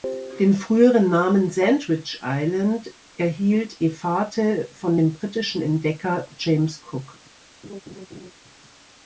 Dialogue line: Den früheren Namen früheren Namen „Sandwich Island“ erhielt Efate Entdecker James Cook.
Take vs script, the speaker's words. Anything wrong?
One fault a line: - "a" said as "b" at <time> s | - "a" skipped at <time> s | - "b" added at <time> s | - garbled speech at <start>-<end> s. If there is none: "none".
- "früheren Namen" skipped at 1.5 s
- "von dem britischen" added at 4.7 s